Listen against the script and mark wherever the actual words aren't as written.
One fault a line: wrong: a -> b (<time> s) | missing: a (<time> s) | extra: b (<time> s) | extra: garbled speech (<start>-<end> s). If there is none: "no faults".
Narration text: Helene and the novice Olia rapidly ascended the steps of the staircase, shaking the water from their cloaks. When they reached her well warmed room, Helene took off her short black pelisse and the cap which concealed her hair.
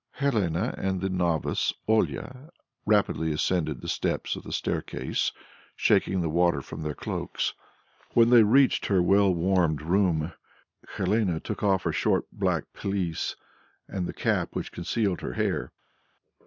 no faults